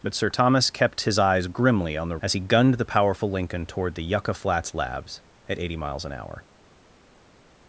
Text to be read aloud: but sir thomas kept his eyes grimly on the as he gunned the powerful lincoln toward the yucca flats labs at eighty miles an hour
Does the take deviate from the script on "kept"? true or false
false